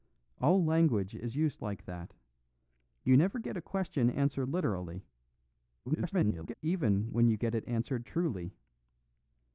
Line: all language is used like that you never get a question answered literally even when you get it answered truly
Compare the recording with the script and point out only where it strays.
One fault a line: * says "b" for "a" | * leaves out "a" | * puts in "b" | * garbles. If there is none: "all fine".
* garbles